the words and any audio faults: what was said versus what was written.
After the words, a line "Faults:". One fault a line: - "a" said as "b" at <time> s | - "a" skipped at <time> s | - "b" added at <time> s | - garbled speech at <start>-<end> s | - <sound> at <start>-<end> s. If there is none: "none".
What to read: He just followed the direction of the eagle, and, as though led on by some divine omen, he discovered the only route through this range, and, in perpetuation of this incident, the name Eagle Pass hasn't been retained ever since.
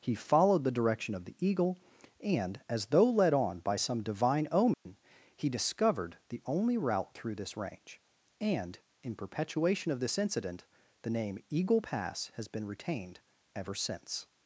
He followed the direction of the eagle, and, as though led on by some divine omen, he discovered the only route through this range, and, in perpetuation of this incident, the name Eagle Pass has been retained ever since.
Faults:
- "just" skipped at 0.1 s
- dropout at 4.7-4.9 s
- "hasn't" said as "has" at 12.3 s